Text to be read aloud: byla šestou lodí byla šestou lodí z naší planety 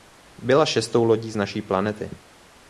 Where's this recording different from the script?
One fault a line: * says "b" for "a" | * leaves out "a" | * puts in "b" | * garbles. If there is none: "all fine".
* leaves out "byla šestou lodí"